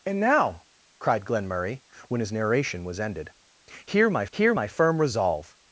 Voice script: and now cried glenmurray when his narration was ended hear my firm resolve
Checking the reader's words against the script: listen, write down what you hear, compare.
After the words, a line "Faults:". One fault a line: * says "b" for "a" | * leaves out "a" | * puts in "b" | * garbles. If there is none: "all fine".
and now cried glenmurray when his narration was ended hear my hear my firm resolve
Faults:
* puts in "hear my"